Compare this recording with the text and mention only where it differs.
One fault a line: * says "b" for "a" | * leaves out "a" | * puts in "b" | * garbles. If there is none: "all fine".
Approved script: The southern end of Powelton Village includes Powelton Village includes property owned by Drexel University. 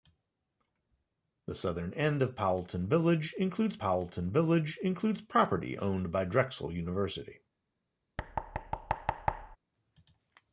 all fine